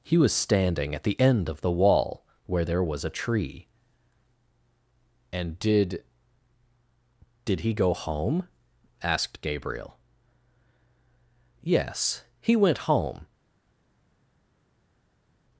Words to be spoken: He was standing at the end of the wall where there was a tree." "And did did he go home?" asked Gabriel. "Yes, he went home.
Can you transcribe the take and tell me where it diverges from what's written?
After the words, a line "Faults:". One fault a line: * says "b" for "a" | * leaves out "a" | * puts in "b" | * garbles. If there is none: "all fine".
He was standing at the end of the wall where there was a tree." "And did did he go home?" asked Gabriel. "Yes, he went home.
Faults:
all fine